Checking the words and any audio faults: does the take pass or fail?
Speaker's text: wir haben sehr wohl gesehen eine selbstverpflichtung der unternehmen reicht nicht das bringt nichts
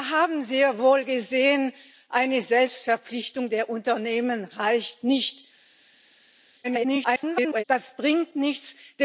fail